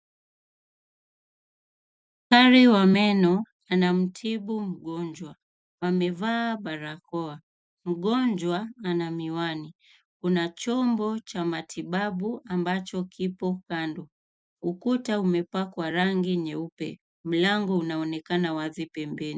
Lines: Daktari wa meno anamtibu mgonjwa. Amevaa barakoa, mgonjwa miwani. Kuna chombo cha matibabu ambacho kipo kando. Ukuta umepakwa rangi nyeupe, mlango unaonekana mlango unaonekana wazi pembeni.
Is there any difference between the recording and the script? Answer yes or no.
yes